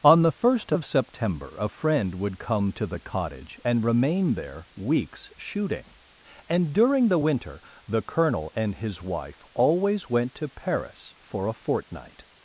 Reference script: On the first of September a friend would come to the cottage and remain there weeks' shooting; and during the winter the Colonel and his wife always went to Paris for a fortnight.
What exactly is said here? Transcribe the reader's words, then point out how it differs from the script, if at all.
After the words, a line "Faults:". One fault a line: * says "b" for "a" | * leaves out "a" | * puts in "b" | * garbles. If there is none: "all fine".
On the first of September a friend would come to the cottage and remain there weeks' shooting; and during the winter the Colonel and his wife always went to Paris for a fortnight.
Faults:
all fine